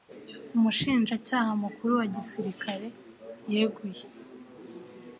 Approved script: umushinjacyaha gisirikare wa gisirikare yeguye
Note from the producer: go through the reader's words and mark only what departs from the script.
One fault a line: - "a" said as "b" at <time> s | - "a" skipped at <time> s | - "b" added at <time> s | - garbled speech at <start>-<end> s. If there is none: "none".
- "gisirikare" said as "mukuru" at 1.6 s